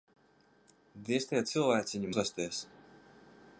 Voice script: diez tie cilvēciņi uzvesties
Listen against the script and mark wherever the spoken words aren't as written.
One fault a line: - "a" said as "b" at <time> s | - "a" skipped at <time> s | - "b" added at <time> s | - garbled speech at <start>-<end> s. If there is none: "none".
none